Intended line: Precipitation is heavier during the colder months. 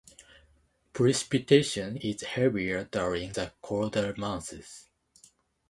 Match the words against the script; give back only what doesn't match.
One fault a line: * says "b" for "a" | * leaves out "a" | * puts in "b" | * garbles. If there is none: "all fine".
all fine